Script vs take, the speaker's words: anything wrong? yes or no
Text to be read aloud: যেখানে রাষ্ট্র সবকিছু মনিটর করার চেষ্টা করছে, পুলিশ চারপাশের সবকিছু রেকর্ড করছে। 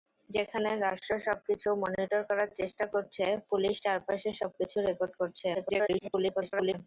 yes